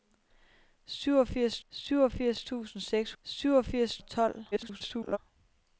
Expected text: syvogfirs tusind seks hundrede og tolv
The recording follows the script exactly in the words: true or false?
false